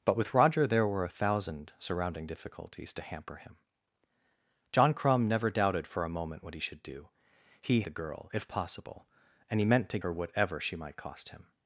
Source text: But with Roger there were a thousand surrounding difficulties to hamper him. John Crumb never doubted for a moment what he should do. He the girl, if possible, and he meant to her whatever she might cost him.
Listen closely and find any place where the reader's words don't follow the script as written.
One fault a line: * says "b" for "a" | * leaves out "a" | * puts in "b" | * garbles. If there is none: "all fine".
all fine